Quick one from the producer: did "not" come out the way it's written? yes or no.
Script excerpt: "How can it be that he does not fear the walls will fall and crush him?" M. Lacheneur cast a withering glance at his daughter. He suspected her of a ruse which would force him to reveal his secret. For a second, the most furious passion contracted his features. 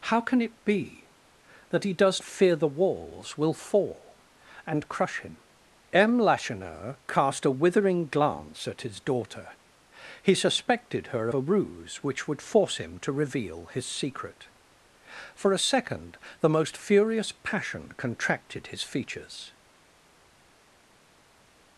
no